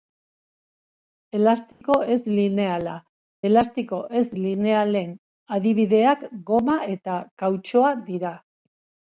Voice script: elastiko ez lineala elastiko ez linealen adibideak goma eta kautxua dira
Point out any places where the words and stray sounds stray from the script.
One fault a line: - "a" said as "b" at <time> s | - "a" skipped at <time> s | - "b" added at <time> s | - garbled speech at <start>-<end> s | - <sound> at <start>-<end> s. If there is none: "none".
- dropout at 1.7-1.8 s